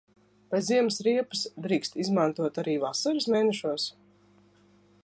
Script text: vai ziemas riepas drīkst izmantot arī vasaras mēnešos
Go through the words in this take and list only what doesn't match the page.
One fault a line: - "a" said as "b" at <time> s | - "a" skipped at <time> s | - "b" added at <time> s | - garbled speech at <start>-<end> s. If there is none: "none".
none